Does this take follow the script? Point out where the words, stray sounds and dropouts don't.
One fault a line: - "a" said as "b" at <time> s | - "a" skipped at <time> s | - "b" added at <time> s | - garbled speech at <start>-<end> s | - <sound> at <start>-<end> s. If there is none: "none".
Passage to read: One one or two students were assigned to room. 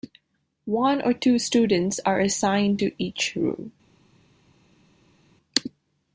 - "one" skipped at 1.0 s
- "were" said as "are" at 2.1 s
- "each" added at 3.0 s